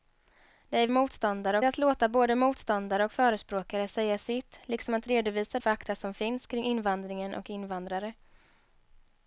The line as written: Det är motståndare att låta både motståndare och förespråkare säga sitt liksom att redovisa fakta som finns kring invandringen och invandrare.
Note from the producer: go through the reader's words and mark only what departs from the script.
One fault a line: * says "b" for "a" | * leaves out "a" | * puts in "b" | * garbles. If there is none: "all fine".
all fine